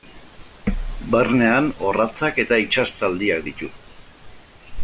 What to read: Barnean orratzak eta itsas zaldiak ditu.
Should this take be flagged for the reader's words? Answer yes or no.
no